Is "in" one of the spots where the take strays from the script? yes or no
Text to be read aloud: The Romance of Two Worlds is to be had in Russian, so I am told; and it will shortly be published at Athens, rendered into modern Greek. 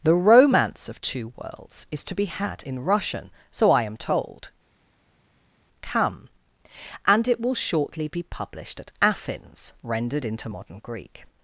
no